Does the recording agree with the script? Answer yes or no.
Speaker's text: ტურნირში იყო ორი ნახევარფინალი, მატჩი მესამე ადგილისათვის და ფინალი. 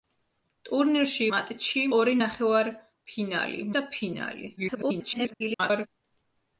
no